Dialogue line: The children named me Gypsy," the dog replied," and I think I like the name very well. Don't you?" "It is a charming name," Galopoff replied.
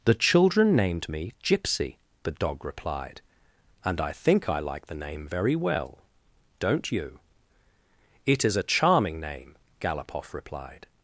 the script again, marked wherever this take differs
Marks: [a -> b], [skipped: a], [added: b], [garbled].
The children named me Gypsy," the dog replied," and I think I like the name very well. Don't you?" "It is a charming name," Galopoff replied.